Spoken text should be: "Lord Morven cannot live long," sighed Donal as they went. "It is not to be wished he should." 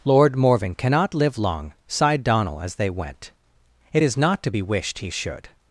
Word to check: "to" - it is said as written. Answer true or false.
true